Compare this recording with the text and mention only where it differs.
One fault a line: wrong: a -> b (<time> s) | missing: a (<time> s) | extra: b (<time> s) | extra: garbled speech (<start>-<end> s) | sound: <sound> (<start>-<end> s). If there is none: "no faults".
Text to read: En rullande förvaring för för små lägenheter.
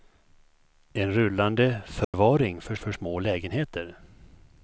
sound: dropout (2.0-2.1 s)